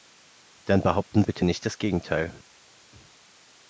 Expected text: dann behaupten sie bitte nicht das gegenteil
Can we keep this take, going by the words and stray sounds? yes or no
no